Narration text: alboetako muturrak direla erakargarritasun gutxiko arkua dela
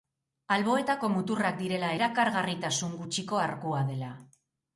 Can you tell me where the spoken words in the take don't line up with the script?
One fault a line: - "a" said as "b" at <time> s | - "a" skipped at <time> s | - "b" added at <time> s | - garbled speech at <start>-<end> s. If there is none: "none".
none